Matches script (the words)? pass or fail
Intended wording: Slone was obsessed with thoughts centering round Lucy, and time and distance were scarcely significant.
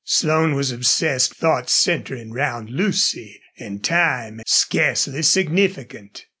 fail